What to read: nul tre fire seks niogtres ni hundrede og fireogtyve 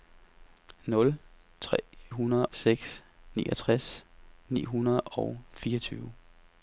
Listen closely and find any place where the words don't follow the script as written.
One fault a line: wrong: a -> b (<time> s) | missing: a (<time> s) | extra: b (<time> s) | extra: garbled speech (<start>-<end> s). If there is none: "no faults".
wrong: fire -> hundrede (2.1 s)